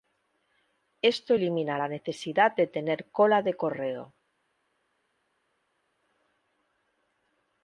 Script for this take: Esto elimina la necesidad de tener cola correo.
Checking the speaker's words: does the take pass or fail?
fail